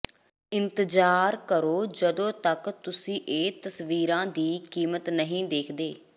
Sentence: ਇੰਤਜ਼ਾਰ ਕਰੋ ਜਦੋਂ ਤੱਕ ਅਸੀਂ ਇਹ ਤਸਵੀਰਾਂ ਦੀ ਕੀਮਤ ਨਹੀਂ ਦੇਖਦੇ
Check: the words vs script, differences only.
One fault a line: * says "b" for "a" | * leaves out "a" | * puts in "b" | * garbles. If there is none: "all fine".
* says "ਤੁਸੀਂ" for "ਅਸੀਂ"